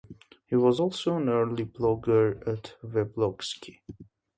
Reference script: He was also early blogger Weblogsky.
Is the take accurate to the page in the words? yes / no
no